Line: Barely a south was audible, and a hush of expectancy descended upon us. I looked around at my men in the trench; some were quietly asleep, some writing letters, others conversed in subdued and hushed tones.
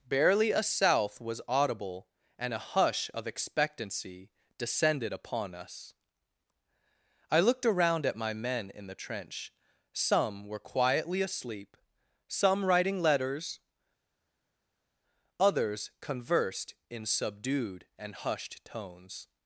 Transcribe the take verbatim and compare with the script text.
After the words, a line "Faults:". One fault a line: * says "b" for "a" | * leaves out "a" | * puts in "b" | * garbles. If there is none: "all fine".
Barely a south was audible, and a hush of expectancy descended upon us. I looked around at my men in the trench; some were quietly asleep, some writing letters, others conversed in subdued and hushed tones.
Faults:
all fine